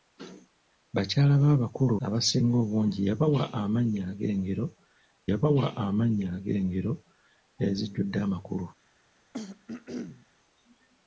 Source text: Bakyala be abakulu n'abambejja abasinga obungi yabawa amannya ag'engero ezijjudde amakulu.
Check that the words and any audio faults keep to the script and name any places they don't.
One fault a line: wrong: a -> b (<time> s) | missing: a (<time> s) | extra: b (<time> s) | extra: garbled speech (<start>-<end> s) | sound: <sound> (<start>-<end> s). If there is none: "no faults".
missing: n'abambejja (2.0 s)
extra: yabawa amannya ag'engero (5.3 s)
sound: throat clearing (9.3-10.3 s)